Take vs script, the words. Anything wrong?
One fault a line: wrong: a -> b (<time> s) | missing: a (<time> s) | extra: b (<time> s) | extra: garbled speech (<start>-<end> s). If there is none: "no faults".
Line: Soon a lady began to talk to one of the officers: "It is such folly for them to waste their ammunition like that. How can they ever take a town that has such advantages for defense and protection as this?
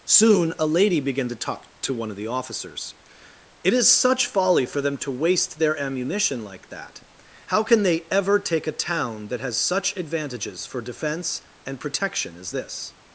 no faults